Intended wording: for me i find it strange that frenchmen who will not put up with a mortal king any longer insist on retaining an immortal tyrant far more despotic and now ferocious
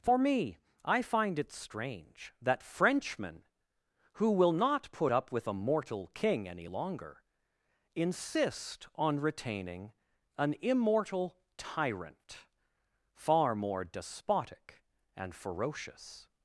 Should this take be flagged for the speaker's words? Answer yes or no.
yes